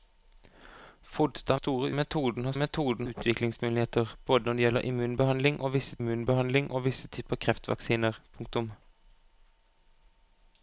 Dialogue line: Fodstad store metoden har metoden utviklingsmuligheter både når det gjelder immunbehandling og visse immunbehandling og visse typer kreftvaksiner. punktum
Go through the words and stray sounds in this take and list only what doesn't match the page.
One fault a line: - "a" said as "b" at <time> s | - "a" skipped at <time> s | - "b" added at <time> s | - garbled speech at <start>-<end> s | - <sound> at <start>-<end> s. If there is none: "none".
none